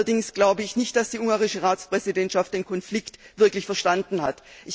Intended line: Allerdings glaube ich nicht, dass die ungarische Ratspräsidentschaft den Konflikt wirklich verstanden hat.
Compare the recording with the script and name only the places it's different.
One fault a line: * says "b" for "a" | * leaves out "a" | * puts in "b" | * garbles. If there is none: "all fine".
all fine